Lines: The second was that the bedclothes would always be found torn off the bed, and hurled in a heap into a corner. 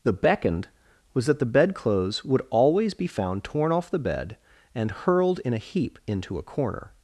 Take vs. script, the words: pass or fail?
fail